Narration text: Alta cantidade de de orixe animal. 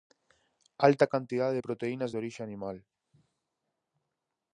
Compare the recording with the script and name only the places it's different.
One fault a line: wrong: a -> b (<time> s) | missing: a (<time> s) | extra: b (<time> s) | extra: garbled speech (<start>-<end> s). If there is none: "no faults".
extra: proteínas (1.7 s)